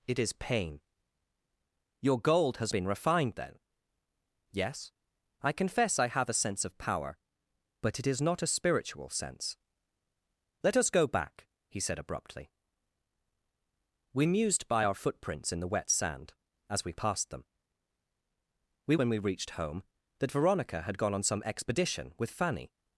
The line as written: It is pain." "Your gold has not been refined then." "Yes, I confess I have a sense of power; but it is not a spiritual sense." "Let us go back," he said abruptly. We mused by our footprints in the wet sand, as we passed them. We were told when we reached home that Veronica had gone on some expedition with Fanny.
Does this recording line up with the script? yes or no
no